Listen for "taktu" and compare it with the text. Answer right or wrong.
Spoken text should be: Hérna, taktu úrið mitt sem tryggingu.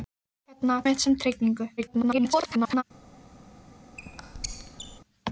wrong